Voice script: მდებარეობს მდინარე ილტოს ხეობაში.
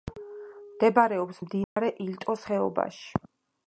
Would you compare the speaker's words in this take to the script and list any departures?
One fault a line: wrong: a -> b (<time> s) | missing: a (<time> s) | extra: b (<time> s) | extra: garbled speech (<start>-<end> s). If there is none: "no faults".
no faults